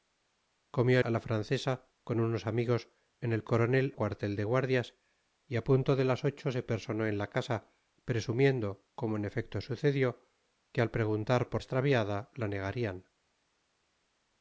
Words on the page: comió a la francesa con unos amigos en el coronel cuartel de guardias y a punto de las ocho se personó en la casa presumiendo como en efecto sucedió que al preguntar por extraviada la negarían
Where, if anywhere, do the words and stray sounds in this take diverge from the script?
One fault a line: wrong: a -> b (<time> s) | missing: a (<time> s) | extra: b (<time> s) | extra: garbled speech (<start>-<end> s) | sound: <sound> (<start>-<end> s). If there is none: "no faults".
no faults